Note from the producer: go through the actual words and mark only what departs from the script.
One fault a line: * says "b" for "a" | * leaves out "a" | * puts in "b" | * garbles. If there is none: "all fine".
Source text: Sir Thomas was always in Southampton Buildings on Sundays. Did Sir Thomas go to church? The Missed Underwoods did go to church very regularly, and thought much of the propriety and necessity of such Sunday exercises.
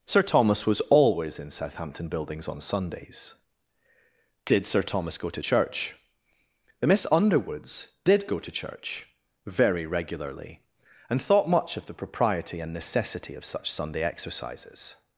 * says "Miss" for "Missed"